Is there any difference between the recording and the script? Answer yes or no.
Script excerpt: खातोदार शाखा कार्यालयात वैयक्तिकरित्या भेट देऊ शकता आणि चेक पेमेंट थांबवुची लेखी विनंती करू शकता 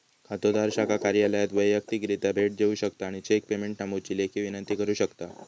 no